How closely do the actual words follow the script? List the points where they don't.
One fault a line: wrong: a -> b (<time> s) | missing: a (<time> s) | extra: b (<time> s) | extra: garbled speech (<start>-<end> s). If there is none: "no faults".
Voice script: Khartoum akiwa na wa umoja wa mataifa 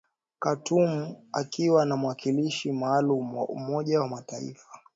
extra: mwakilishi maalum (2.0 s)